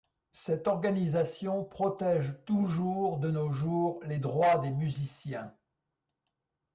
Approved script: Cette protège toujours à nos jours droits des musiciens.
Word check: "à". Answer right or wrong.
wrong